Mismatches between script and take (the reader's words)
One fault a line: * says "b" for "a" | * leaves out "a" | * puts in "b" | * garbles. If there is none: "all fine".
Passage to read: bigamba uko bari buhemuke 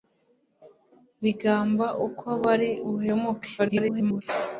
* garbles